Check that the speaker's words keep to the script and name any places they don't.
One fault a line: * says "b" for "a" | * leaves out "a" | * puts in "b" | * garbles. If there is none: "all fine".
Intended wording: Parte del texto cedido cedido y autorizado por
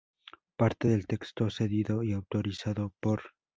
* leaves out "cedido"